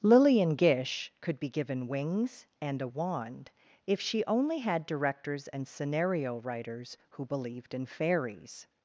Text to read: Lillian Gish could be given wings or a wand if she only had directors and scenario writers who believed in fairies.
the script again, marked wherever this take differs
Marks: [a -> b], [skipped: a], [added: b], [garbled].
Lillian Gish could be given wings [or -> and] a wand if she only had directors and scenario writers who believed in fairies.